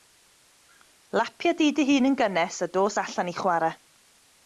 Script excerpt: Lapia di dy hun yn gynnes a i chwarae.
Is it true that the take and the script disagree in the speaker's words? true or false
true